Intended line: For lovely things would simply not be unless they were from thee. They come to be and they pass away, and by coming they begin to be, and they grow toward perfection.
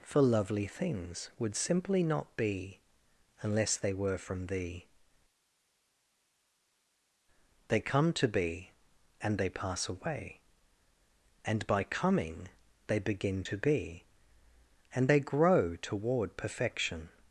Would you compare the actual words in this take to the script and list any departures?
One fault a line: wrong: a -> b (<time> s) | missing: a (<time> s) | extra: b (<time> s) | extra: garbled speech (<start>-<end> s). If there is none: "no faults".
no faults